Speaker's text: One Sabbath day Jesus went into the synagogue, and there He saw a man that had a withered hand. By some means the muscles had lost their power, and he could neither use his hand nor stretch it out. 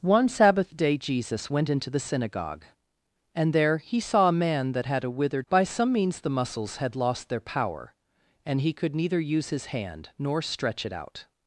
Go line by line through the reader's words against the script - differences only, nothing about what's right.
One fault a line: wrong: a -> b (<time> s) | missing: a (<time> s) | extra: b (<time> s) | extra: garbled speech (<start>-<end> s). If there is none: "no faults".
missing: hand (5.5 s)